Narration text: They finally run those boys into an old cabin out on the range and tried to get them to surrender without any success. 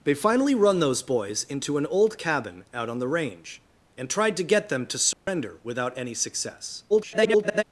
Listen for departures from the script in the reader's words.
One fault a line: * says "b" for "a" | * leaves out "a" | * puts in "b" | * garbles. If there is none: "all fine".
* garbles